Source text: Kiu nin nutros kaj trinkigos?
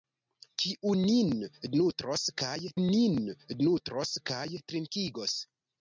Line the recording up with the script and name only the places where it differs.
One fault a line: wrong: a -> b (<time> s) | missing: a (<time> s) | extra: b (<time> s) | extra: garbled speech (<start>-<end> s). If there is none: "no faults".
extra: nin nutros kaj (2.8 s)